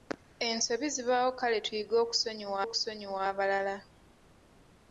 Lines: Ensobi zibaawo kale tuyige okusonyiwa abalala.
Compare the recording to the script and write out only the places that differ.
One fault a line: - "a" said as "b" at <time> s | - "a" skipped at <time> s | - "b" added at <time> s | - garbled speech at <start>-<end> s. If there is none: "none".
- "okusonyiwa" added at 2.6 s